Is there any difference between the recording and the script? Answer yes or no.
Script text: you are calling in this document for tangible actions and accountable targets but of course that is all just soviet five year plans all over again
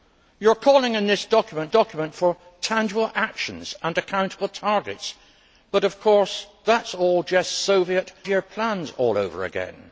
yes